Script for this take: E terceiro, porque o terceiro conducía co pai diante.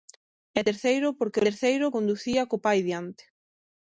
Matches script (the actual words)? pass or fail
pass